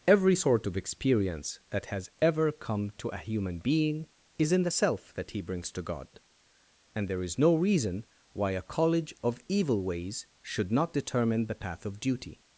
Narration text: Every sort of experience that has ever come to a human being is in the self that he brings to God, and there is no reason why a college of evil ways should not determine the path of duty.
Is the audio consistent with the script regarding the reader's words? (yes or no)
yes